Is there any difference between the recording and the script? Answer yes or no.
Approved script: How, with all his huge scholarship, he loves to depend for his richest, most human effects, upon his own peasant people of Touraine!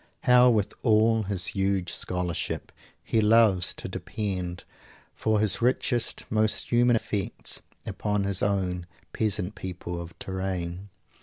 no